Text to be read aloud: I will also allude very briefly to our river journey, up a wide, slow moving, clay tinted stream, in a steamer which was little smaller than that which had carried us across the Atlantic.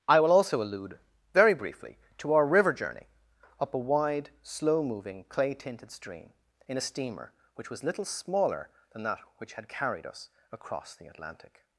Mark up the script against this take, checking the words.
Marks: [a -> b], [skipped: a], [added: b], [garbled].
I will also allude very briefly to our river journey, up a wide, slow moving, clay tinted stream, in a steamer which was little smaller than that which had carried us across the Atlantic.